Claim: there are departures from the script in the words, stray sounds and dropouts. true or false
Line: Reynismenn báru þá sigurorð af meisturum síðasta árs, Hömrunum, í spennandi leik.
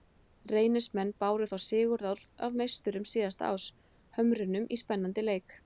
false